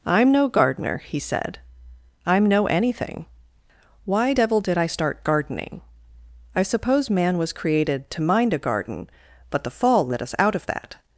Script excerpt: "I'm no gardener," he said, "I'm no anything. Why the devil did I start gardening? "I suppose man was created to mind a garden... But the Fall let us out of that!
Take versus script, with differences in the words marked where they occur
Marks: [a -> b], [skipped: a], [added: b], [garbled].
"I'm no gardener," he said, "I'm no anything. Why [skipped: the] devil did I start gardening? "I suppose man was created to mind a garden... But the Fall let us out of that!